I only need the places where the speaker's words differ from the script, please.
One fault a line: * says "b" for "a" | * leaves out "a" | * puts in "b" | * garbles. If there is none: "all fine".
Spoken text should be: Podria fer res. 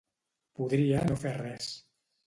* puts in "no"